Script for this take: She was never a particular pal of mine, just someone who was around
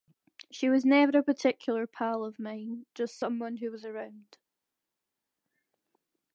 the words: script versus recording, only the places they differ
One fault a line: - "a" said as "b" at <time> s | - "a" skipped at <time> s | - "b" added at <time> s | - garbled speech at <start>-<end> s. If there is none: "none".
none